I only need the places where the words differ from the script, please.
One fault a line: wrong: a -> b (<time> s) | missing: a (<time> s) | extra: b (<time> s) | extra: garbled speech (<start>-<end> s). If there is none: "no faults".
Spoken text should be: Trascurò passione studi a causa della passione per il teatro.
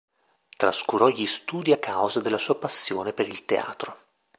wrong: passione -> gli (1.1 s)
extra: sua (2.4 s)